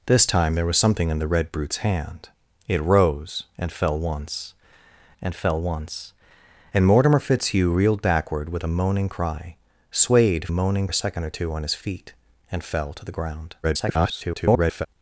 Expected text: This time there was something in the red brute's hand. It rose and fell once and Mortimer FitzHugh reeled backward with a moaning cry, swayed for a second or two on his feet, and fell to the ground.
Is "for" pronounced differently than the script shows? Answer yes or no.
yes